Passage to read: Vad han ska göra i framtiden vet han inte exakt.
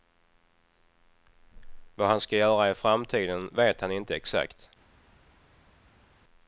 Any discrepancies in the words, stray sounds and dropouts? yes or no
no